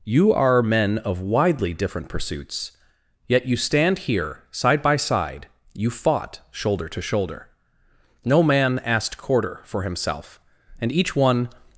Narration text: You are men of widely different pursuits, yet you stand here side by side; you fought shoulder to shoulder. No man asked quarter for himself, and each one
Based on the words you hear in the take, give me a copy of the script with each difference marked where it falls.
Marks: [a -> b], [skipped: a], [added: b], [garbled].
You are men of widely different pursuits, yet you stand here side by side; you fought shoulder to shoulder. No man asked quarter for himself, and each one